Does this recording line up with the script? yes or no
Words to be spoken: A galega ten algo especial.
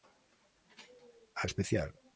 no